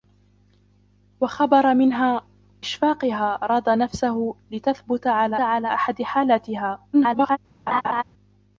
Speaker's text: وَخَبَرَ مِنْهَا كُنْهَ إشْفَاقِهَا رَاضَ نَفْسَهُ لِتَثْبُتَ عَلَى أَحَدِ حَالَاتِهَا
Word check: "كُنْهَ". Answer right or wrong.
wrong